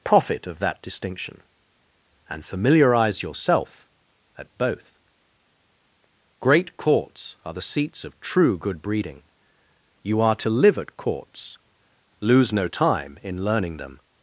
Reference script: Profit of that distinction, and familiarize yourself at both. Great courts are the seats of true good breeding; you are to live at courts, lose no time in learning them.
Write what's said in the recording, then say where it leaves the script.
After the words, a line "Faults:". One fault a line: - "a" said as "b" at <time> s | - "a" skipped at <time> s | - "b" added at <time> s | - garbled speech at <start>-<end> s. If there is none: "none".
Profit of that distinction, and familiarize yourself at both. Great courts are the seats of true good breeding; you are to live at courts, lose no time in learning them.
Faults:
none